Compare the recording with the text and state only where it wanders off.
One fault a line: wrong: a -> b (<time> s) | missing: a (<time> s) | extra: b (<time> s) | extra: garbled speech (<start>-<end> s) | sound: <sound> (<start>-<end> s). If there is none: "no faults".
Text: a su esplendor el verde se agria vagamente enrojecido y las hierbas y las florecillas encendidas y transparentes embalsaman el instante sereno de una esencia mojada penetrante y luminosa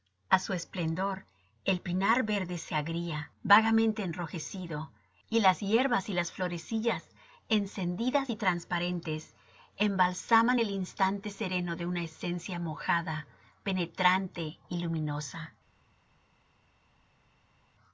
extra: pinar (1.8 s)